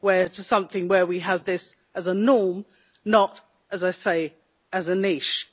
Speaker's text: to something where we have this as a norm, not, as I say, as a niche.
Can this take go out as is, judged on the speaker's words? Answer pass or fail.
pass